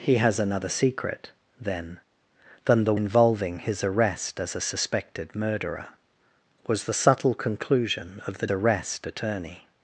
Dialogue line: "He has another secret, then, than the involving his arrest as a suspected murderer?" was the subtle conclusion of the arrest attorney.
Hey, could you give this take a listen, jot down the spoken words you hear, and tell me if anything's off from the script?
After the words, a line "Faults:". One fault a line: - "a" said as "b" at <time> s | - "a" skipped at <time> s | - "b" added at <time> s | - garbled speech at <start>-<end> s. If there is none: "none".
"He has another secret, then, than the involving his arrest as a suspected murderer?" was the subtle conclusion of the arrest attorney.
Faults:
none